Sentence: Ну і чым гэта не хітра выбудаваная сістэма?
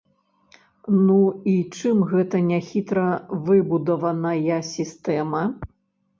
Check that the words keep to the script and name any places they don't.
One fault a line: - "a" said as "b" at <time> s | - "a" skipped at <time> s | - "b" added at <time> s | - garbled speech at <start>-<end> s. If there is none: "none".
none